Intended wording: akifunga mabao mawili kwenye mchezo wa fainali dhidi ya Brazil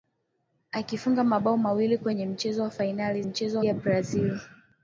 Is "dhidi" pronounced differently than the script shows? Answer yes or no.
yes